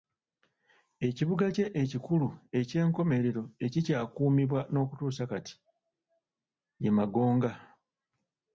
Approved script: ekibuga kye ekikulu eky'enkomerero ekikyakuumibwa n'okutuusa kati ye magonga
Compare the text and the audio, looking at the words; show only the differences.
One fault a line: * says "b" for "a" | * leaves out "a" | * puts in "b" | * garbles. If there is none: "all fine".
all fine